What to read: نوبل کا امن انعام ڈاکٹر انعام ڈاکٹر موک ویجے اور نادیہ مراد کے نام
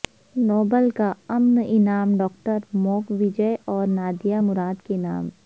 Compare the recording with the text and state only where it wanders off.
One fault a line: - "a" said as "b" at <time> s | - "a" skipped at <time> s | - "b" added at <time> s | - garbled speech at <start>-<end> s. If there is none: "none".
- "انعام ڈاکٹر" skipped at 2.6 s